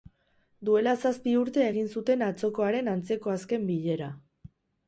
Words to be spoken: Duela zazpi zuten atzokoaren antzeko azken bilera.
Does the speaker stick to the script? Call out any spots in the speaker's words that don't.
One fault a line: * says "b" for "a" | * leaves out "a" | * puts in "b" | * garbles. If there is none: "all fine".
* puts in "urte egin"